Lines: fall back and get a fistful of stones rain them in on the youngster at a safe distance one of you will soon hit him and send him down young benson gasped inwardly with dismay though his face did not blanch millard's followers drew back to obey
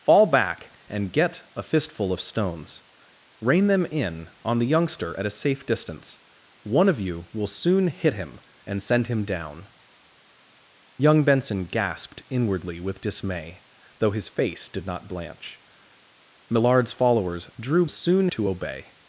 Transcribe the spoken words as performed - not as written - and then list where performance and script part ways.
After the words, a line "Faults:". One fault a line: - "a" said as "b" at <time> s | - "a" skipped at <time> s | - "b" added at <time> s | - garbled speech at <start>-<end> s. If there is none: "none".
fall back and get a fistful of stones rain them in on the youngster at a safe distance one of you will soon hit him and send him down young benson gasped inwardly with dismay though his face did not blanch millard's followers drew soon to obey
Faults:
- "back" said as "soon" at 17.9 s